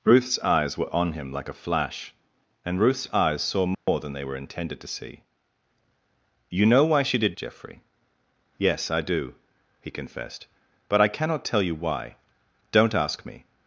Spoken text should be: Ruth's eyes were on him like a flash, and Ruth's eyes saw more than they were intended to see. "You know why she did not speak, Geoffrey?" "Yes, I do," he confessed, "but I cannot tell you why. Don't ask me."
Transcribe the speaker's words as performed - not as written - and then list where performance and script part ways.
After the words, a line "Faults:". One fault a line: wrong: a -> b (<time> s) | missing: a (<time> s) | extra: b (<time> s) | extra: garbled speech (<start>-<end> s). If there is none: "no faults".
Ruth's eyes were on him like a flash, and Ruth's eyes saw more than they were intended to see. "You know why she did Geoffrey?" "Yes, I do," he confessed, "but I cannot tell you why. Don't ask me."
Faults:
missing: not speak (7.3 s)